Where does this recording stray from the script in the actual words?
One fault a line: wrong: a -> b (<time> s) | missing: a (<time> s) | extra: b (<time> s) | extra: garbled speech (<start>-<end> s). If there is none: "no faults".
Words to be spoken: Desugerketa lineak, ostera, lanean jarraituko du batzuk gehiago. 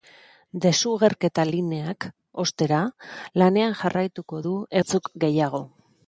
no faults